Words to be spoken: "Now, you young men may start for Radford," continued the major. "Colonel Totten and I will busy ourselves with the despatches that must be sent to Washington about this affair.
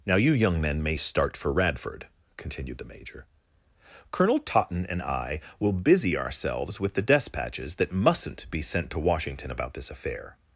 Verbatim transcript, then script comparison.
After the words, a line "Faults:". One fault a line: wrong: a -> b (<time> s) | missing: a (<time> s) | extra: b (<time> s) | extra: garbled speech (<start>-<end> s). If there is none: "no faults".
"Now, you young men may start for Radford," continued the major. "Colonel Totten and I will busy ourselves with the despatches that mustn't be sent to Washington about this affair.
Faults:
wrong: must -> mustn't (7.9 s)